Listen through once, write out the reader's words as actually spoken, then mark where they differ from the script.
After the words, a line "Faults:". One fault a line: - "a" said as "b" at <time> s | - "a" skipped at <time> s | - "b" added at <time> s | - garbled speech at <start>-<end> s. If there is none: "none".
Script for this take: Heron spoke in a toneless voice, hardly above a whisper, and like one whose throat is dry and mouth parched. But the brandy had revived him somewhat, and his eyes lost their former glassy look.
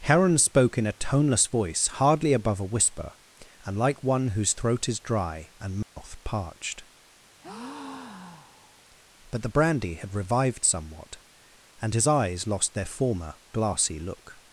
Heron spoke in a toneless voice, hardly above a whisper, and like one whose throat is dry and mouth parched. But the brandy had revived somewhat, and his eyes lost their former glassy look.
Faults:
- "him" skipped at 10.7 s